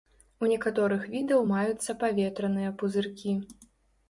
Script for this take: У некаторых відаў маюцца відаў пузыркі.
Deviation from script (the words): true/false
true